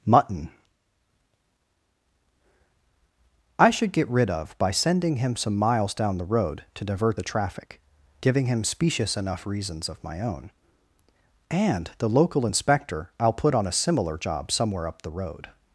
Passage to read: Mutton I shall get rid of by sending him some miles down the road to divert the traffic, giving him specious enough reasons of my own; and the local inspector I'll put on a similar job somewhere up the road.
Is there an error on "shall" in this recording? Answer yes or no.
yes